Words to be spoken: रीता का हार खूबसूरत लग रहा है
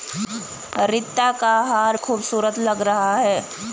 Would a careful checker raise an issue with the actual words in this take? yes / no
no